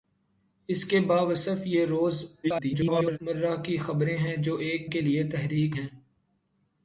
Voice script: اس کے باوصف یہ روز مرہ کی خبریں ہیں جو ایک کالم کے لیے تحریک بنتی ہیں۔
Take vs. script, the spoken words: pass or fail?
fail